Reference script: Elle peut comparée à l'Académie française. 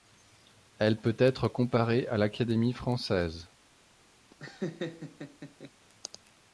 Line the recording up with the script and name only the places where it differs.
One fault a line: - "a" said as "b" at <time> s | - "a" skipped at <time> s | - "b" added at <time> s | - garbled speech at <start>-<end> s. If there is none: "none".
- "être" added at 1.2 s